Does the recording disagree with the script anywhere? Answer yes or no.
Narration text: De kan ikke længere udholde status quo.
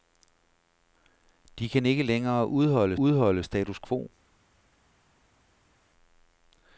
yes